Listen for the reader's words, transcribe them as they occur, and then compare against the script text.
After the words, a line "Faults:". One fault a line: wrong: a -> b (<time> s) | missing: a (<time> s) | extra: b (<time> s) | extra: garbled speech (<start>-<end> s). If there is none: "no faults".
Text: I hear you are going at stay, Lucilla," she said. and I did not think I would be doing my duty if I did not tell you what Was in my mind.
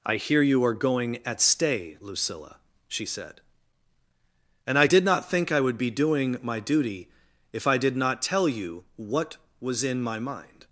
I hear you are going at stay, Lucilla," she said. and I did not think I would be doing my duty if I did not tell you what Was in my mind.
Faults:
no faults